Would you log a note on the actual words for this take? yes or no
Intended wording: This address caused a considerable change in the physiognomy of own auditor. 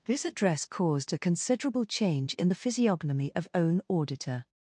no